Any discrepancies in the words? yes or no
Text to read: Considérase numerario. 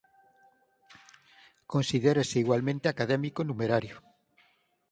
yes